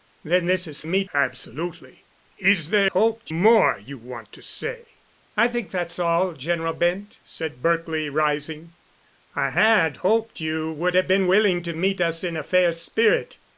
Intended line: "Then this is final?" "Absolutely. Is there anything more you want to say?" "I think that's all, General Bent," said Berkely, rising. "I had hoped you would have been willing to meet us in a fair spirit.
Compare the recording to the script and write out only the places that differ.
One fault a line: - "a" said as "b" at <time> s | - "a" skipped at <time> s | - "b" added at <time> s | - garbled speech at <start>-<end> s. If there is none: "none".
- "final" said as "meet" at 0.8 s
- "anything" said as "hoped" at 2.9 s